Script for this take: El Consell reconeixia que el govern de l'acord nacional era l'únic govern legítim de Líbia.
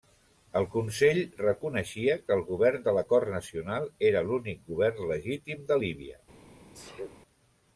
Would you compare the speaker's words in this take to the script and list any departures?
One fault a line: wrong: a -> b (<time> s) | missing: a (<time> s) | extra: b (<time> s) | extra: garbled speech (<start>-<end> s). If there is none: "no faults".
no faults